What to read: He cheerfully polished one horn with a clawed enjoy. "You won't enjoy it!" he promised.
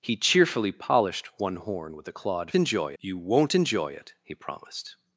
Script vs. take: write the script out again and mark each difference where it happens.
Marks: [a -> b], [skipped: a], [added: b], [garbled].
He cheerfully polished one horn with a clawed enjoy. "You won't enjoy it!" he promised.